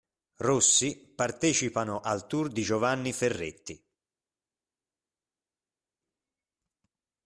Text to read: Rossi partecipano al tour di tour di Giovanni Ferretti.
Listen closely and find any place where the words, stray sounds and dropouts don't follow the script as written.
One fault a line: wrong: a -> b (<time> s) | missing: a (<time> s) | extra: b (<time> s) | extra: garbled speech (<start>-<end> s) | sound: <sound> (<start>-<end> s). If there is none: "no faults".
missing: tour di (2.6 s)